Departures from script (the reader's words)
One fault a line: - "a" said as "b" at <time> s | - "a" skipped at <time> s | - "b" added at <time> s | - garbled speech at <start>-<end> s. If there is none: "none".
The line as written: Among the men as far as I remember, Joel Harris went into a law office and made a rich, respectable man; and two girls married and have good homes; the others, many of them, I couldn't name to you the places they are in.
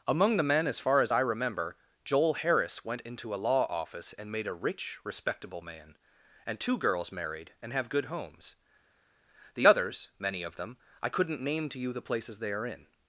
none